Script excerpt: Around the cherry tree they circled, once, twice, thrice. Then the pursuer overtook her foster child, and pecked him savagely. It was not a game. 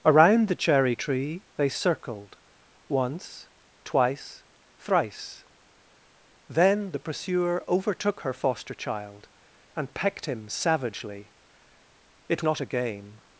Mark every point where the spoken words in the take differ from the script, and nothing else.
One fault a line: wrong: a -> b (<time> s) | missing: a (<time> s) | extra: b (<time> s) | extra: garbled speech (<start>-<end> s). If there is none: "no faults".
missing: was (12.4 s)